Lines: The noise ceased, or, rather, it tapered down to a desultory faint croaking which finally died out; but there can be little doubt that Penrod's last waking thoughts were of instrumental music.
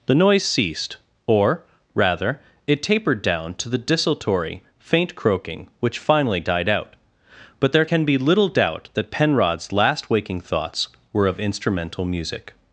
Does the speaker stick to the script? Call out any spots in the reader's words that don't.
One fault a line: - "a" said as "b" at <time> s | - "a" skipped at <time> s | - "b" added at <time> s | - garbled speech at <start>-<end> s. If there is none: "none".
- "a" said as "the" at 3.7 s